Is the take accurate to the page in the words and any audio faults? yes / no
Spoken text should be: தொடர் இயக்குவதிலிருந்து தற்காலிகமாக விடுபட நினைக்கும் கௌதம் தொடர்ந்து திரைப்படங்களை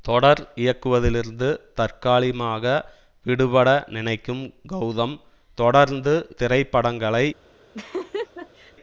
no